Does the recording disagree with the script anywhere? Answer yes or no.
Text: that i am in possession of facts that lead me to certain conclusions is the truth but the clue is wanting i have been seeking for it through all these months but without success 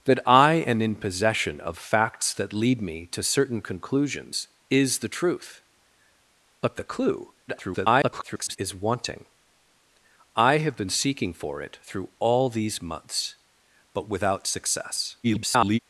yes